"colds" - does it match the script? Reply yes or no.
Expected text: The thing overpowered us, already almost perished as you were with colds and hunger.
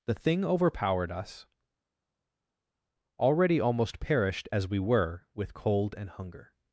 no